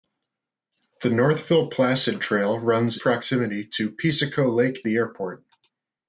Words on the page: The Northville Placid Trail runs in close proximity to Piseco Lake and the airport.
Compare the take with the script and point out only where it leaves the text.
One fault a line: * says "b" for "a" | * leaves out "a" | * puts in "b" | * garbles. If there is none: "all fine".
* leaves out "in close"
* leaves out "and"